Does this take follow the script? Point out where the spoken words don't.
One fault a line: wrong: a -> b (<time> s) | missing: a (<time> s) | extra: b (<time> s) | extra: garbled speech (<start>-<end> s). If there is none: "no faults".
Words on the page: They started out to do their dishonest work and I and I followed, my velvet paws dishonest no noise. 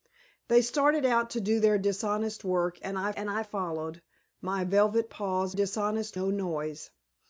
no faults